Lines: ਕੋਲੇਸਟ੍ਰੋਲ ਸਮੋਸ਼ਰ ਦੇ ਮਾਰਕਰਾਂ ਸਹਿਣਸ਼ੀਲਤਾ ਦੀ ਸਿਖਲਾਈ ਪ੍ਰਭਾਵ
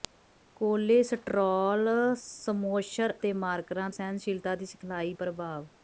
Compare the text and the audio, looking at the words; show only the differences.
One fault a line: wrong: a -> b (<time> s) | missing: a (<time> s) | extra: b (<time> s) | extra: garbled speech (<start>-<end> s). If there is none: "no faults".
no faults